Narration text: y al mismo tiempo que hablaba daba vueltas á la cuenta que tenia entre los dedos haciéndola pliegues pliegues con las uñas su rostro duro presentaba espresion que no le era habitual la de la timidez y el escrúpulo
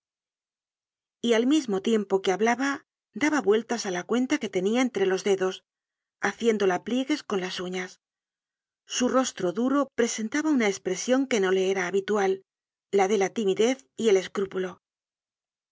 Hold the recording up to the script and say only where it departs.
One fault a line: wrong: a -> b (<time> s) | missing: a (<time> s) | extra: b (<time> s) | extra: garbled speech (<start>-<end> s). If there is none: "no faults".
missing: pliegues (7.2 s)
extra: una (10.6 s)